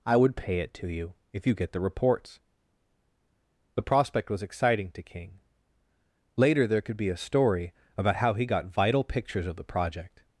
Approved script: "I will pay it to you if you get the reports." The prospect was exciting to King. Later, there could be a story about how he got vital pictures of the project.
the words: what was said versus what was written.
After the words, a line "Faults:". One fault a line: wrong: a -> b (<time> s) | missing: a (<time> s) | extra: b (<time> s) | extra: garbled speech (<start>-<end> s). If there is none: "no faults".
"I would pay it to you if you get the reports." The prospect was exciting to King. Later, there could be a story about how he got vital pictures of the project.
Faults:
wrong: will -> would (0.2 s)